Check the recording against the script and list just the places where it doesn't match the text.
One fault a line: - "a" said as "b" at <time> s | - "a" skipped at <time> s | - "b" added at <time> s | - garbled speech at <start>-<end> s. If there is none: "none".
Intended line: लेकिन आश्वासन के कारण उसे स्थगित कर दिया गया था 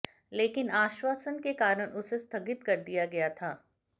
none